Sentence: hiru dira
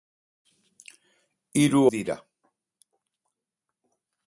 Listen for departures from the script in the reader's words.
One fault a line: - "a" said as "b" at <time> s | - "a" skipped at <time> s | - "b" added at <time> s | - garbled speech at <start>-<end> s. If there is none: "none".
none